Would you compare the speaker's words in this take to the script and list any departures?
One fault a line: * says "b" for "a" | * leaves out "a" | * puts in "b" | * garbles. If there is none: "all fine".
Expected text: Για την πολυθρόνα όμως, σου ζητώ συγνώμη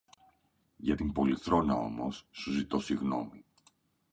all fine